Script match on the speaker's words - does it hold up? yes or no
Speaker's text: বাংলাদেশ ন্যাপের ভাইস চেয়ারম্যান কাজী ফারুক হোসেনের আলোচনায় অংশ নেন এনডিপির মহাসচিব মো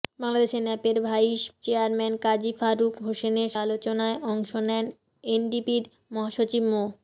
yes